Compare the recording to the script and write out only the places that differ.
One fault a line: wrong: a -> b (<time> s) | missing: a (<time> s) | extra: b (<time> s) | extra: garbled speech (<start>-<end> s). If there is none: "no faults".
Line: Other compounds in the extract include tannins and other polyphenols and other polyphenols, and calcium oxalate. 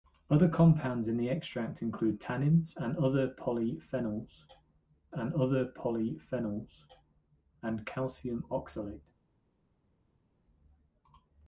no faults